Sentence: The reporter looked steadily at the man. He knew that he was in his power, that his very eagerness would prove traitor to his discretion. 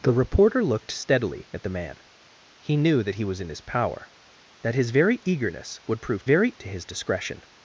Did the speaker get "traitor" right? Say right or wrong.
wrong